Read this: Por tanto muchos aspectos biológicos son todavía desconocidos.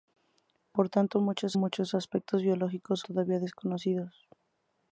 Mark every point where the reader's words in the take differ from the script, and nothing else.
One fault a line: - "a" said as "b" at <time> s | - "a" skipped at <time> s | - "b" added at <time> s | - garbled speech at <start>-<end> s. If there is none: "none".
- "muchos" added at 1.5 s
- "son" skipped at 3.0 s